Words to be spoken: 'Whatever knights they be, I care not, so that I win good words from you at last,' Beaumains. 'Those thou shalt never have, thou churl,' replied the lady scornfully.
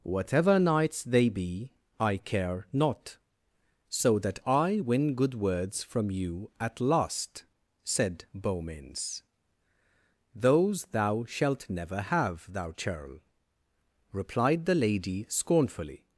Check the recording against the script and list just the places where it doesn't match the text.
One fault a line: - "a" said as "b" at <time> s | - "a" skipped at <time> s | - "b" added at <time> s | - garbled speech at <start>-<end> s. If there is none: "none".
- "said" added at 7.8 s